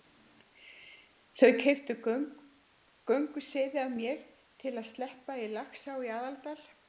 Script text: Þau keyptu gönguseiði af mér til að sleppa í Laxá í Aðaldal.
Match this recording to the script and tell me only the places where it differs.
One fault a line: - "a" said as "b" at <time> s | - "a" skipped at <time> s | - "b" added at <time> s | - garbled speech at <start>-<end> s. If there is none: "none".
none